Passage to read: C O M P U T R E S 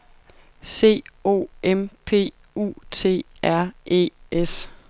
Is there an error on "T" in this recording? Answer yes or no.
no